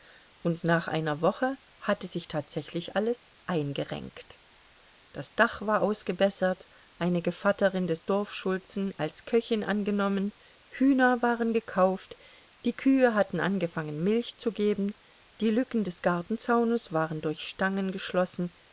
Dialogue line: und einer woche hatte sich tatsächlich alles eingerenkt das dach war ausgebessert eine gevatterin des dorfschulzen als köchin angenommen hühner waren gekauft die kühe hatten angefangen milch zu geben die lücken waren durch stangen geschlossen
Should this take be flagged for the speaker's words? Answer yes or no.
yes